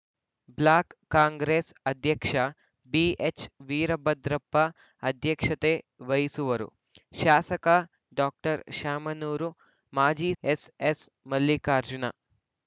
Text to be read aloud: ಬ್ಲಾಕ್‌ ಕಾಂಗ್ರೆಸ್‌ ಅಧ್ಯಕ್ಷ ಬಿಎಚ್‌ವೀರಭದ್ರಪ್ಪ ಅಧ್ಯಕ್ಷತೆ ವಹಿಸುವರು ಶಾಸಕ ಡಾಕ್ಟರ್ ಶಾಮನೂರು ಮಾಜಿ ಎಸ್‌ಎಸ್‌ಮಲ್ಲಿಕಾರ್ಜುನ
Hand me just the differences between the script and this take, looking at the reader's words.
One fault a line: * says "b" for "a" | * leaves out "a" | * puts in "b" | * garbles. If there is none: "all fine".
all fine